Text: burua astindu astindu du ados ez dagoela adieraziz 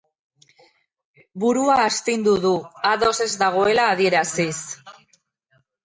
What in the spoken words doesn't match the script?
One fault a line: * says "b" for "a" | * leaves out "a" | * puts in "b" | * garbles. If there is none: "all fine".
* leaves out "astindu"